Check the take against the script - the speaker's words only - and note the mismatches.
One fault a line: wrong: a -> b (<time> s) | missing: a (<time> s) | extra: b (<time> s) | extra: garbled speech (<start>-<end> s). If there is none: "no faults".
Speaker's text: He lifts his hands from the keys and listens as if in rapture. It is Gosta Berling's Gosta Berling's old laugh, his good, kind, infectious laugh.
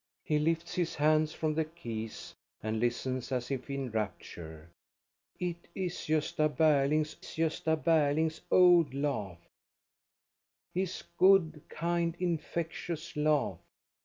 no faults